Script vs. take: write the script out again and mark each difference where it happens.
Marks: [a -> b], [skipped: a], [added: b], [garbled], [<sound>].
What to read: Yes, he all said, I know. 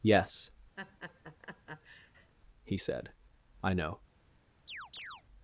Yes, [laugh] he [skipped: all] said, I know. [chirp]